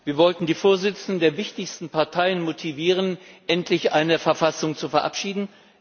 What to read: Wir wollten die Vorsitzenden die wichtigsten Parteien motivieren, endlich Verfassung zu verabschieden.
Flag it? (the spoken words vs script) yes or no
yes